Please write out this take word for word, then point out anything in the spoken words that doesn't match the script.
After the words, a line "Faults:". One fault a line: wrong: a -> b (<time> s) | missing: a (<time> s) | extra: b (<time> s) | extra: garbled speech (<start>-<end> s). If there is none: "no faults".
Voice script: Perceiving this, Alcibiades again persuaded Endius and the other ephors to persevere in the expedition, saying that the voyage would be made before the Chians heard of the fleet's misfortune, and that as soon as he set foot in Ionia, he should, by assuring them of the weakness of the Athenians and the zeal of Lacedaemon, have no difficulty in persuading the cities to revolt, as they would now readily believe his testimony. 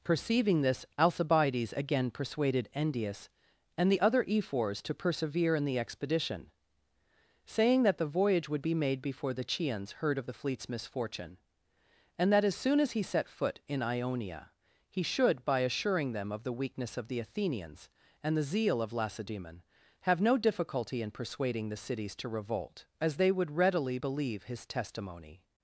Perceiving this, Alcibiades again persuaded Endius and the other ephors to persevere in the expedition, saying that the voyage would be made before the Chians heard of the fleet's misfortune, and that as soon as he set foot in Ionia, he should, by assuring them of the weakness of the Athenians and the zeal of Lacedaemon, have no difficulty in persuading the cities to revolt, as they would readily believe his testimony.
Faults:
missing: now (23.5 s)